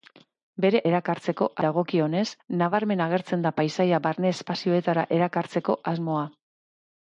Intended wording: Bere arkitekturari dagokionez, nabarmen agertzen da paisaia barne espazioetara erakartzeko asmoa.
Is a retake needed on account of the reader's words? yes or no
yes